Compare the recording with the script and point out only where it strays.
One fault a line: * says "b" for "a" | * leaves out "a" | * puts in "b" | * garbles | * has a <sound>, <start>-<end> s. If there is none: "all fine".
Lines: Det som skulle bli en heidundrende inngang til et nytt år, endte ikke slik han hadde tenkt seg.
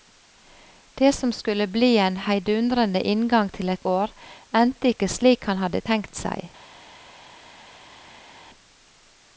* leaves out "nytt"